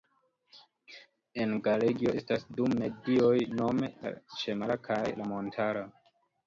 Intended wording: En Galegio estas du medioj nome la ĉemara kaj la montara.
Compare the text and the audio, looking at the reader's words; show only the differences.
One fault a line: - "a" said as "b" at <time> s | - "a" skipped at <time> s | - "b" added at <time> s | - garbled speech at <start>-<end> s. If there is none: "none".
none